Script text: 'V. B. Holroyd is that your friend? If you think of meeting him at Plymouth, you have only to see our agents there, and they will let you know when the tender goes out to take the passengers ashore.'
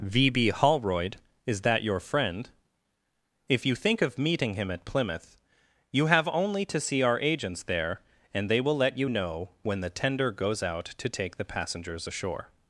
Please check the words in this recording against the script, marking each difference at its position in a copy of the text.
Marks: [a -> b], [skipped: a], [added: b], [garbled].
'V. B. Holroyd is that your friend? If you think of meeting him at Plymouth, you have only to see our agents there, and they will let you know when the tender goes out to take the passengers ashore.'